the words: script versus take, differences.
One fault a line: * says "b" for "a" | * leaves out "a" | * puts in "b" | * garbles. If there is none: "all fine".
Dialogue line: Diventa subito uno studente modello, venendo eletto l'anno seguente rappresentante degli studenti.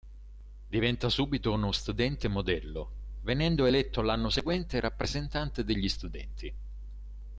all fine